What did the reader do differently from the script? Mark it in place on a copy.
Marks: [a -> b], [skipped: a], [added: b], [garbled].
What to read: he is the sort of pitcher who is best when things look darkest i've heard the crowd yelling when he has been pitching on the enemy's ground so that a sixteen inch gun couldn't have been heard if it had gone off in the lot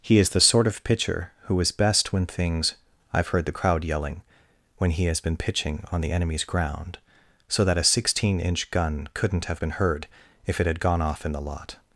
he is the sort of pitcher who is best when things [skipped: look darkest] i've heard the crowd yelling when he has been pitching on the enemy's ground so that a sixteen inch gun couldn't have been heard if it had gone off in the lot